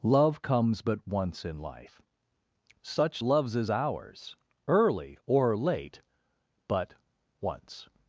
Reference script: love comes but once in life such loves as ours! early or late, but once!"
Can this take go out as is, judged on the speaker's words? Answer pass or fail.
pass